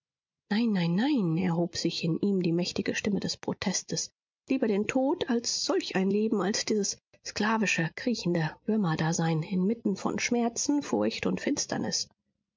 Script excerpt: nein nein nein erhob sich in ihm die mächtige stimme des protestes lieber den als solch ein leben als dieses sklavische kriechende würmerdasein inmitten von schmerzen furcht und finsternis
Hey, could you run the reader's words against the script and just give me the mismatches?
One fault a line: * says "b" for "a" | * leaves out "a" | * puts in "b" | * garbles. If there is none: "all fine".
* puts in "tod"